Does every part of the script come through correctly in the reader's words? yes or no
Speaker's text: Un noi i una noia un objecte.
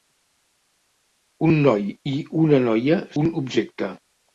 yes